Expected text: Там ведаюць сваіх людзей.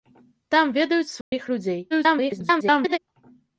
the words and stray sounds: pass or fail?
fail